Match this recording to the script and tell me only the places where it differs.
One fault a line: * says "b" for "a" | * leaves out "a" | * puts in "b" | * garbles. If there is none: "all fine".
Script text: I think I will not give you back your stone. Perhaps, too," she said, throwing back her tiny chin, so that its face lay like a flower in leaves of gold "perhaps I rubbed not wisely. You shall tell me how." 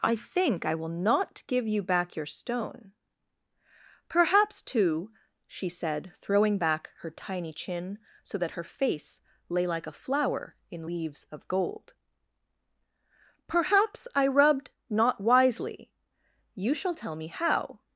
* says "her" for "its"